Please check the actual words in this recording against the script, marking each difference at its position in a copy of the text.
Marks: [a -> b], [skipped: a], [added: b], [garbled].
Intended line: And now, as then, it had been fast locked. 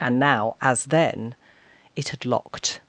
And now, as then, it had [skipped: been fast] locked.